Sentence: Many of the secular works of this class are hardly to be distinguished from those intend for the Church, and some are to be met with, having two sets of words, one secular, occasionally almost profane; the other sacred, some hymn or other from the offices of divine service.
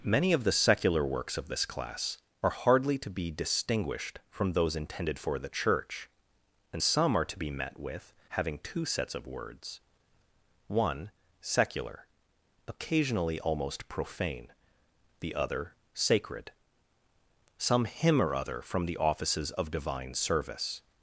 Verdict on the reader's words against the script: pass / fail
fail